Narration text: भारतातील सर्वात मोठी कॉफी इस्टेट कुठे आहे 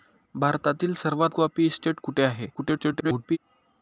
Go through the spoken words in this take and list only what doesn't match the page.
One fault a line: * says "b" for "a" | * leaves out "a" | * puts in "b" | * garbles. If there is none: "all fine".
* leaves out "मोठी"
* garbles